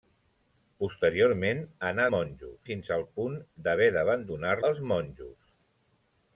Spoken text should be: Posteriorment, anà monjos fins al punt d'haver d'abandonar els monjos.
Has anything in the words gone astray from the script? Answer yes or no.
no